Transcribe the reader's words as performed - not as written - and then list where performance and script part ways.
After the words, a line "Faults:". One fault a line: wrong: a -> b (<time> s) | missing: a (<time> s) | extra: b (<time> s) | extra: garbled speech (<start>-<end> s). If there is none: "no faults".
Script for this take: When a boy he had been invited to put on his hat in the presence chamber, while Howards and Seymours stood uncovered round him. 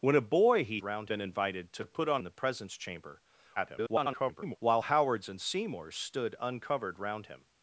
When a boy he round been invited to put on the presence chamber, [garbled] while Howards and Seymours stood uncovered round him.
Faults:
wrong: had -> round (0.8 s)
missing: his hat in (2.2 s)
extra: garbled speech (3.6-4.6 s)